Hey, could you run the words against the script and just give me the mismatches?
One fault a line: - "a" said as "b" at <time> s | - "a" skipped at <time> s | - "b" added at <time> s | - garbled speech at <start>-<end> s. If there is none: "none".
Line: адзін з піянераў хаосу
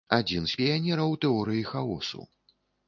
- "тэорыі" added at 1.3 s